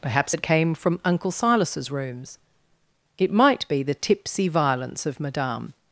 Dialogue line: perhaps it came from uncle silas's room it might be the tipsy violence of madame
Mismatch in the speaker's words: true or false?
true